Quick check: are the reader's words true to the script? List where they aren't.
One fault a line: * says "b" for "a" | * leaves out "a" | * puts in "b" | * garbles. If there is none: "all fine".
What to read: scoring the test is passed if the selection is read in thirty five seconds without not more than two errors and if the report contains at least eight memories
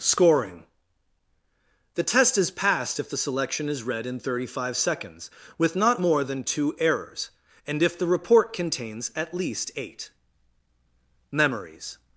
* says "with" for "without"